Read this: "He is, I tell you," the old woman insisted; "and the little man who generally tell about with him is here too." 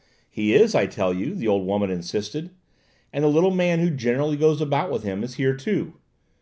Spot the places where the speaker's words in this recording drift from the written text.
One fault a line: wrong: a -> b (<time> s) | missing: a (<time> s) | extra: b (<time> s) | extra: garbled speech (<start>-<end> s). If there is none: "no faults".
wrong: tell -> goes (4.3 s)